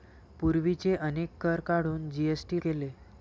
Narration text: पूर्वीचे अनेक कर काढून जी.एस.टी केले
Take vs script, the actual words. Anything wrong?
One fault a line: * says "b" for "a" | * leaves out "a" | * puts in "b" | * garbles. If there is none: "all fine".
all fine